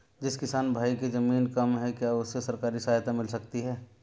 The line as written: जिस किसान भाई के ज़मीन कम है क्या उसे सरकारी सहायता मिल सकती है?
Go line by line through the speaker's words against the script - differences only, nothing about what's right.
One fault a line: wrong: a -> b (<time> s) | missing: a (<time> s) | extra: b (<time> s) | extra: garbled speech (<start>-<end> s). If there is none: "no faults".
no faults